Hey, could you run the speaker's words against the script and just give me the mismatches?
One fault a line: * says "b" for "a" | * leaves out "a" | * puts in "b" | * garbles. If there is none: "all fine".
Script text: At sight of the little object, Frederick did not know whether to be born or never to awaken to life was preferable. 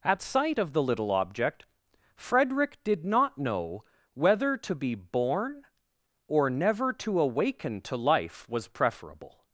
all fine